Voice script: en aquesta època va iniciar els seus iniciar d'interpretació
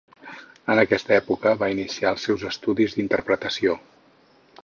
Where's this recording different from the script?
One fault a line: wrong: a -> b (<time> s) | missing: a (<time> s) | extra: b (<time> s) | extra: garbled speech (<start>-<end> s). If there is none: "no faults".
wrong: iniciar -> estudis (2.5 s)